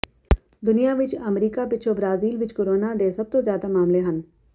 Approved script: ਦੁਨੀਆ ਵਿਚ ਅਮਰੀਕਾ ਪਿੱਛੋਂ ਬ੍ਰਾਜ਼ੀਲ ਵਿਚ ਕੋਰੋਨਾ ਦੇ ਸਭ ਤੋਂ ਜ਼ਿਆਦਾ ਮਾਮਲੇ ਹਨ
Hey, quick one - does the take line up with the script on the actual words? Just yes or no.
yes